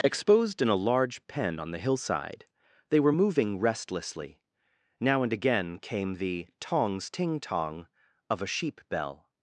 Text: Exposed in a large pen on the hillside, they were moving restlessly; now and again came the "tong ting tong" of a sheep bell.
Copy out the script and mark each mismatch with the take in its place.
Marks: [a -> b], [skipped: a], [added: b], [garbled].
Exposed in a large pen on the hillside, they were moving restlessly; now and again came the ["tong -> tongs] ting tong" of a sheep bell.